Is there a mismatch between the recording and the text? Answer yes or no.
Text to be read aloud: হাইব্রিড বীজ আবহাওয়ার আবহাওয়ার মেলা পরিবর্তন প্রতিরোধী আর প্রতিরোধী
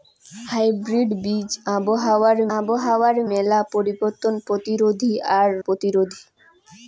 no